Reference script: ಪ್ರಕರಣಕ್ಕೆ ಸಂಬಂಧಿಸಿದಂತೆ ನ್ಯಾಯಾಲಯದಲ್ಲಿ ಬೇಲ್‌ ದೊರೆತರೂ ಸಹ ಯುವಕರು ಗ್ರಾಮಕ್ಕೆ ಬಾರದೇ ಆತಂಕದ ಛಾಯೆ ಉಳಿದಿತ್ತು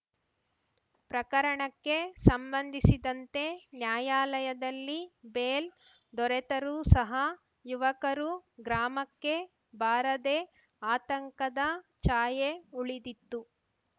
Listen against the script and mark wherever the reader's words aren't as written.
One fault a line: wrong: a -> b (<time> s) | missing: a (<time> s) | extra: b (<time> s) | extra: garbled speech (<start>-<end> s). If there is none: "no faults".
no faults